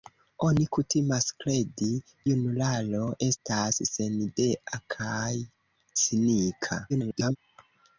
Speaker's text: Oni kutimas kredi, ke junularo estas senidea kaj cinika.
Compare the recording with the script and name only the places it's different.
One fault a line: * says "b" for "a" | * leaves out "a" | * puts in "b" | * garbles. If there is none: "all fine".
* leaves out "ke"
* garbles